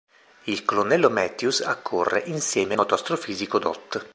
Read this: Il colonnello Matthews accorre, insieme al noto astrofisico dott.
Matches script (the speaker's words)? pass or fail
fail